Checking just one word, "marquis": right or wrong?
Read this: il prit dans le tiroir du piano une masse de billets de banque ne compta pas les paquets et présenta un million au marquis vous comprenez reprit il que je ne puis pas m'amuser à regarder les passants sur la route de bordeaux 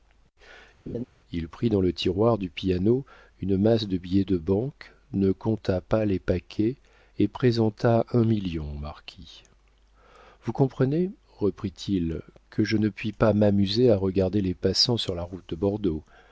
right